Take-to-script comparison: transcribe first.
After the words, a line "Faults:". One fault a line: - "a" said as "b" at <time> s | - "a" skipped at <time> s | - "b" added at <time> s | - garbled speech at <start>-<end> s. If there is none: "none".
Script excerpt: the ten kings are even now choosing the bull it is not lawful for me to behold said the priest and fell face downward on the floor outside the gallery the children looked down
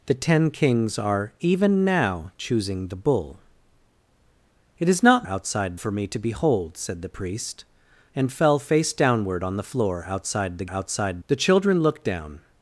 the ten kings are even now choosing the bull it is not outside for me to behold said the priest and fell face downward on the floor outside the outside the children looked down
Faults:
- "lawful" said as "outside" at 5.3 s
- "gallery" said as "outside" at 10.7 s